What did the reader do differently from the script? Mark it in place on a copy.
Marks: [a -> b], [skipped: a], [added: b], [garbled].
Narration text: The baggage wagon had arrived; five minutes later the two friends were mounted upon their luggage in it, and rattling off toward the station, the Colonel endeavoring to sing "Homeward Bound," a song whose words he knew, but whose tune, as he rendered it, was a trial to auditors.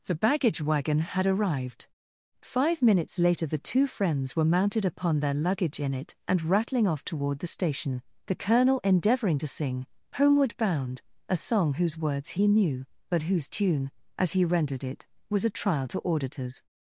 The baggage wagon had arrived; five minutes later the two friends were mounted upon their luggage in it, and rattling off toward the station, the Colonel endeavoring to sing "Homeward Bound," a song whose words he knew, but whose tune, as he rendered it, was a trial to auditors.